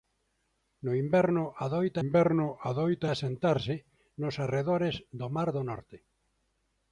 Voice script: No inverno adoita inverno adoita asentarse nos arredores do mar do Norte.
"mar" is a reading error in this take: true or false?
false